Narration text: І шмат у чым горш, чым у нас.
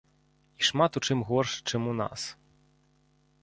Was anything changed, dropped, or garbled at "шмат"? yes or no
no